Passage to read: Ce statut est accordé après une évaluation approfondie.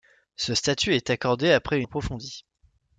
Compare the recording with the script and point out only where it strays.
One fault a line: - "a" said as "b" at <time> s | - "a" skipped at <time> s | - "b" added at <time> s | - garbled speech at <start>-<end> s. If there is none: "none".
- "une évaluation" skipped at 1.8 s